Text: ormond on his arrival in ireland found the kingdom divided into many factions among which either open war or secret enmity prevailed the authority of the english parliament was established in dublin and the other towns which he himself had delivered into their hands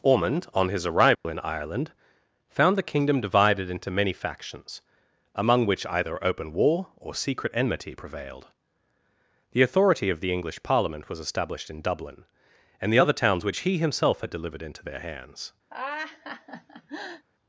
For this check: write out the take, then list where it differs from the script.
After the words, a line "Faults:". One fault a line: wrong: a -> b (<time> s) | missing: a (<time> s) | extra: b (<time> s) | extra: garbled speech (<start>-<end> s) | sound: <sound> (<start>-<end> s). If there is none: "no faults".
ormond on his arrival in ireland found the kingdom divided into many factions among which either open war or secret enmity prevailed the authority of the english parliament was established in dublin and the other towns which he himself had delivered into their hands
Faults:
sound: dropout (1.1-1.2 s)
sound: laugh (15.7-17.2 s)